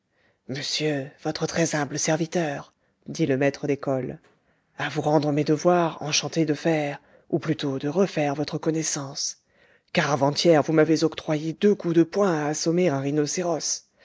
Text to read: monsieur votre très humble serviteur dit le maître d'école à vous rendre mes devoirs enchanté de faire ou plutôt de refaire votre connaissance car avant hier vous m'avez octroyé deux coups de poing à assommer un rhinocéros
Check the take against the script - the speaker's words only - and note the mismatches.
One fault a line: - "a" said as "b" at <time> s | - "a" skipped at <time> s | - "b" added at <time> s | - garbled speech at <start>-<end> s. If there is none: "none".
none